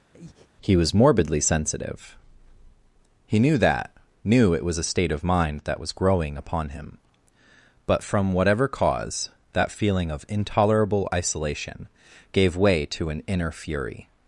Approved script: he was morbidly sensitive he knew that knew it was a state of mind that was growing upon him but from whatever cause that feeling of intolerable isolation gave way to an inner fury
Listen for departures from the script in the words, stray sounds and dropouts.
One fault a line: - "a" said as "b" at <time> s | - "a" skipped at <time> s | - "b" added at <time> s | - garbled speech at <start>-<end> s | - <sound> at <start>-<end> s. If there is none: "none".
- breath at 0.1-0.5 s